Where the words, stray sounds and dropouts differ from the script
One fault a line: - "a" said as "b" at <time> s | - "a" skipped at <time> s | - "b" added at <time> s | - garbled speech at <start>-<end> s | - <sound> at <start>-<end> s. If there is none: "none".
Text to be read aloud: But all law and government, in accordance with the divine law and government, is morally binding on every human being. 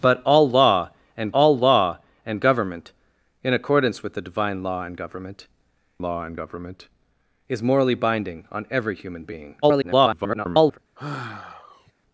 - "all law and" added at 1.3 s
- "law and government" added at 6.0 s
- garbled speech at 9.6-10.8 s
- sigh at 11.0-11.9 s